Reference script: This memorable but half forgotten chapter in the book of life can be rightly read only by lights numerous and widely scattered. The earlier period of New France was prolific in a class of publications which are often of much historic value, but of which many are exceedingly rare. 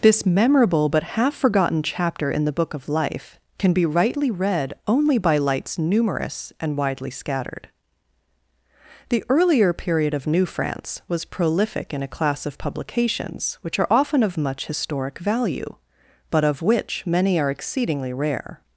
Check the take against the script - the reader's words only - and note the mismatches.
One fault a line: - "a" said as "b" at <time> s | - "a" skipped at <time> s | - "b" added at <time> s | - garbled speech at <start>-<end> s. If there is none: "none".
none